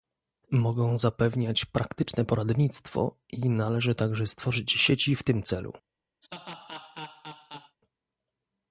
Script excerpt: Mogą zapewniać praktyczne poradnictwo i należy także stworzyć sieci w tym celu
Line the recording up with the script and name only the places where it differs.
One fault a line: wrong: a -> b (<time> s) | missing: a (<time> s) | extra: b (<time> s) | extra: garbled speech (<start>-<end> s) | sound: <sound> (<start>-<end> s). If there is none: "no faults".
sound: laugh (6.2-7.8 s)